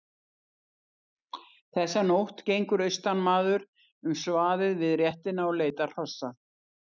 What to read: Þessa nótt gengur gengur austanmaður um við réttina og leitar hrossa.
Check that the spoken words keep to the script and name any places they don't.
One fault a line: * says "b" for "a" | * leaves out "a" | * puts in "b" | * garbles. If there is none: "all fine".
* leaves out "gengur"
* puts in "svaðið"